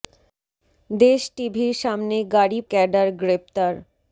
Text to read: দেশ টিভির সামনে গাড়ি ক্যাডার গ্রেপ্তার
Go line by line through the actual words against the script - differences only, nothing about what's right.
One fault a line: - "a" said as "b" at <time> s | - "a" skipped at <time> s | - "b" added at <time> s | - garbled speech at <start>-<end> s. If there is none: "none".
none